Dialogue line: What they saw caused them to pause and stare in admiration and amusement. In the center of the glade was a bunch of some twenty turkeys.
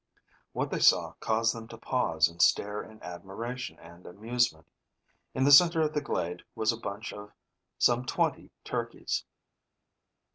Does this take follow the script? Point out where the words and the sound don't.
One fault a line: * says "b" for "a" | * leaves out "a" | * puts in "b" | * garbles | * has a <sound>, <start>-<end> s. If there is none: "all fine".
all fine